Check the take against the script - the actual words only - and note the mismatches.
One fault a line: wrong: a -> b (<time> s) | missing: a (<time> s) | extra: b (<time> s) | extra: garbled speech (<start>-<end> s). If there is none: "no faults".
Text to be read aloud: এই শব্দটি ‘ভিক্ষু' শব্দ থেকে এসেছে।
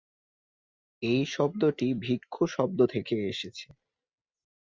no faults